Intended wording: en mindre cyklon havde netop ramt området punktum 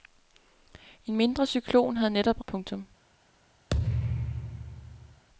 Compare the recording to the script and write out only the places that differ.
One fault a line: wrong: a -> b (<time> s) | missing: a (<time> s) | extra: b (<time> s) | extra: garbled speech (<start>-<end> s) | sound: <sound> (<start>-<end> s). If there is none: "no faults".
missing: ramt området (2.4 s)
sound: thud (3.7-5.2 s)